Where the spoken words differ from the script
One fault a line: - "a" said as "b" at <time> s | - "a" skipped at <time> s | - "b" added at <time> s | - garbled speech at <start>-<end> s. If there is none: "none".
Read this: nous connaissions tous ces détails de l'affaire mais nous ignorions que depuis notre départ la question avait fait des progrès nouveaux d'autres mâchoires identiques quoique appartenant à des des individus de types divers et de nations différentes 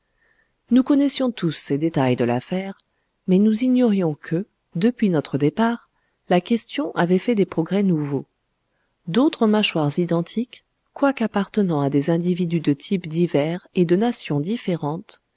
- "des" skipped at 12.1 s